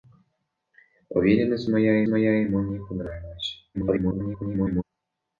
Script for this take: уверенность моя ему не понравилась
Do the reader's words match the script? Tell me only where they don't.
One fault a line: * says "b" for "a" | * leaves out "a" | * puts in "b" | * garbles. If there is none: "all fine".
* puts in "моя"
* garbles